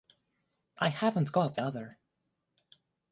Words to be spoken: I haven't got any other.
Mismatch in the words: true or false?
true